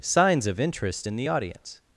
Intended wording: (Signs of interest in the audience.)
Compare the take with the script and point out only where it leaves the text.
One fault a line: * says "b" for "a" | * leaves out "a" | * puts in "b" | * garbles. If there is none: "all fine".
all fine